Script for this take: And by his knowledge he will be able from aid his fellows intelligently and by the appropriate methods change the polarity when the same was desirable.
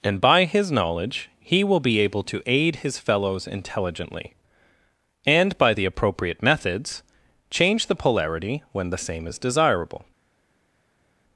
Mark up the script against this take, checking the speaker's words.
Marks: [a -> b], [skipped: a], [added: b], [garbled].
And by his knowledge he will be able [from -> to] aid his fellows intelligently and by the appropriate methods change the polarity when the same [was -> is] desirable.